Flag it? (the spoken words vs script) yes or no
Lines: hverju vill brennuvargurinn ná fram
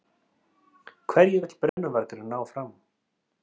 no